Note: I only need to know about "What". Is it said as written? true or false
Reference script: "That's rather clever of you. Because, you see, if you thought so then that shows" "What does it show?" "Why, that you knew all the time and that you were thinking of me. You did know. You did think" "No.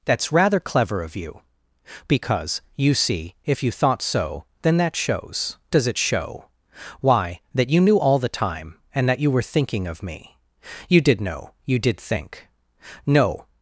false